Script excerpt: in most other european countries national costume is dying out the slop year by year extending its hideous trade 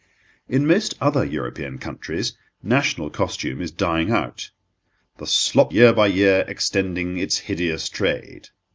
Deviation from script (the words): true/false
false